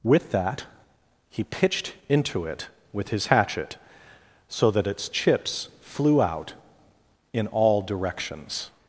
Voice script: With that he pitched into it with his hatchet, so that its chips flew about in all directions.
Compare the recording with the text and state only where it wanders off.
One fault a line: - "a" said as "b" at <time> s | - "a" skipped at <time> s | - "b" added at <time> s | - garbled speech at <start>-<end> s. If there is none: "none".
- "about" said as "out" at 6.2 s